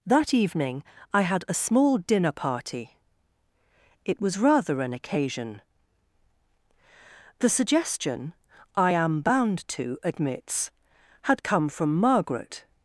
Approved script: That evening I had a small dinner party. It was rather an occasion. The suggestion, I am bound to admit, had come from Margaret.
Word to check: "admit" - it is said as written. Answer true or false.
false